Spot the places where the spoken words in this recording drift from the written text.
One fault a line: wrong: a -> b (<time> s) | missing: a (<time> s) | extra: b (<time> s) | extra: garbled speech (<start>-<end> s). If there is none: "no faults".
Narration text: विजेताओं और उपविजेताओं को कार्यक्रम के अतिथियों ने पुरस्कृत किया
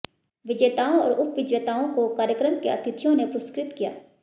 no faults